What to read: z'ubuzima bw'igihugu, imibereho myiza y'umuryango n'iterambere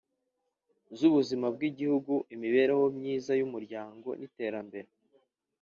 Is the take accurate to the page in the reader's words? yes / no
yes